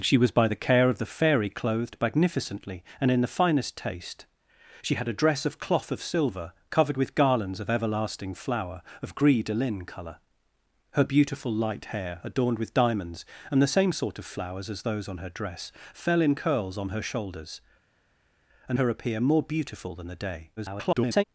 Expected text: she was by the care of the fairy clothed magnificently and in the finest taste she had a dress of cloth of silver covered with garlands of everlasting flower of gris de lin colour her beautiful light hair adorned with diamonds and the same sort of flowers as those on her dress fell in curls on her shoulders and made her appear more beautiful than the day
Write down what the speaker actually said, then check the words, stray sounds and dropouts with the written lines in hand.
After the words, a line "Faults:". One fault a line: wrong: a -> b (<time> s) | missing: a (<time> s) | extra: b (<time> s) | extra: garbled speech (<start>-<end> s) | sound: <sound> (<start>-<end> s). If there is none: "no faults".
she was by the care of the fairy clothed magnificently and in the finest taste she had a dress of cloth of silver covered with garlands of everlasting flower of gris de lin colour her beautiful light hair adorned with diamonds and the same sort of flowers as those on her dress fell in curls on her shoulders and her appear more beautiful than the day [garbled]
Faults:
missing: made (18.8 s)
extra: garbled speech (20.6-21.2 s)